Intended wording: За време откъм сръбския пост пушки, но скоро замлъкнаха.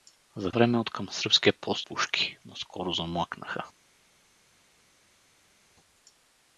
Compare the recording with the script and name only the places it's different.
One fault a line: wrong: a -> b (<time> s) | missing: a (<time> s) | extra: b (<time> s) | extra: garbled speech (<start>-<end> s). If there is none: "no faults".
no faults